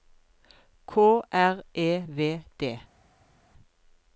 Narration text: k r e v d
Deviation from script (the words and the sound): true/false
false